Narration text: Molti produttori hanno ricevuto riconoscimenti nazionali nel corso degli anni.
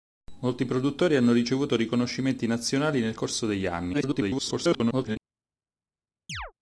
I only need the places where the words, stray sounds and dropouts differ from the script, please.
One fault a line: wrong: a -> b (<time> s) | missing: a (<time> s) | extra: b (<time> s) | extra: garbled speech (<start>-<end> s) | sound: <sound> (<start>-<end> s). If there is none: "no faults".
extra: garbled speech (3.9-5.2 s)
sound: chirp (6.3-6.5 s)